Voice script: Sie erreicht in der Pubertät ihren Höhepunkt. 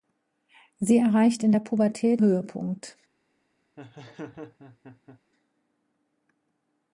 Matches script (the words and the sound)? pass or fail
fail